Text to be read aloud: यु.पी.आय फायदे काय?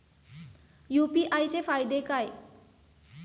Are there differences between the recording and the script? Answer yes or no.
yes